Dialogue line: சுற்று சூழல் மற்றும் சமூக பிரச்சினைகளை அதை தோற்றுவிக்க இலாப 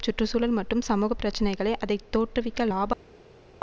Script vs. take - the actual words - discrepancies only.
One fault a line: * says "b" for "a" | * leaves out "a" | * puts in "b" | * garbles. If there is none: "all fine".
all fine